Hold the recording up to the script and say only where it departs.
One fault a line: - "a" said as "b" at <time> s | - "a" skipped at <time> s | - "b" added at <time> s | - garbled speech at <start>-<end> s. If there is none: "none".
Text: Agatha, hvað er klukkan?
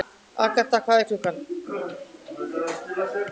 none